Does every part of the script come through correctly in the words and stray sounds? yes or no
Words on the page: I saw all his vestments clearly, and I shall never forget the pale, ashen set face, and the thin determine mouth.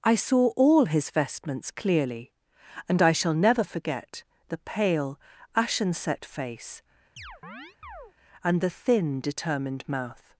no